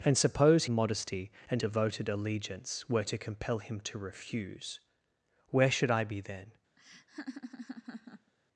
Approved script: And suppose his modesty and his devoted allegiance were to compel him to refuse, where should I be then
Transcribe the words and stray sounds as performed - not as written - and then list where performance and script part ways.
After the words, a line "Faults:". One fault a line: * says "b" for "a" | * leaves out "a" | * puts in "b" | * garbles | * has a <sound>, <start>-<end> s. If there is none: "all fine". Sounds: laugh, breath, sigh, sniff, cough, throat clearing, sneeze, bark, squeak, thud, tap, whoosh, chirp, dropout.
And suppose modesty and devoted allegiance were to compel him to refuse, where should I be then
Faults:
* leaves out "his"
* leaves out "his"
* has a laugh, 6.8-8.3 s